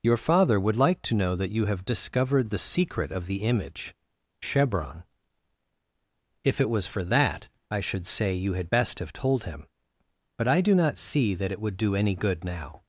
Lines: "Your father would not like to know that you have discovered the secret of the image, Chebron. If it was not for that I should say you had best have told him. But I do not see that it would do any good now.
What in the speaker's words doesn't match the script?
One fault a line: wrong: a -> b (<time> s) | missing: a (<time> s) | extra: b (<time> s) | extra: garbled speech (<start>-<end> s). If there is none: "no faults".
missing: not (0.8 s)
missing: not (6.9 s)